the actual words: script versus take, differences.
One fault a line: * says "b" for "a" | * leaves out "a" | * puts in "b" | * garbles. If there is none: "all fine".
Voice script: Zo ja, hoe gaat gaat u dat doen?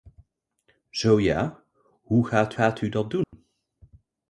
all fine